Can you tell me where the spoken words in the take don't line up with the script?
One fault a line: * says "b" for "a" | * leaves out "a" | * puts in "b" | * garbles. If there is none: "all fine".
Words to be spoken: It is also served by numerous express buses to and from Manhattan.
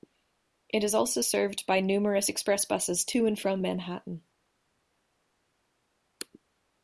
all fine